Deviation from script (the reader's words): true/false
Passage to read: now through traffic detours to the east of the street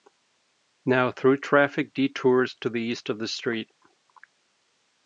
false